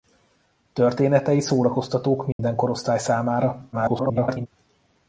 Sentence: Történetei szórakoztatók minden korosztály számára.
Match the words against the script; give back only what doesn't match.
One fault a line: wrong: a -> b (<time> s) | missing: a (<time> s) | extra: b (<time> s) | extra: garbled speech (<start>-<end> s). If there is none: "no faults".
extra: garbled speech (3.7-4.5 s)